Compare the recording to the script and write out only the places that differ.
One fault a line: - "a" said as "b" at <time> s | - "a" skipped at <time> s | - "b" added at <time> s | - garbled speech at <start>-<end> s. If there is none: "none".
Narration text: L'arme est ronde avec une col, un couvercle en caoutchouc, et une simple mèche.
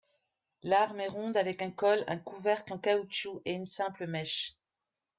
- "une" said as "un" at 1.6 s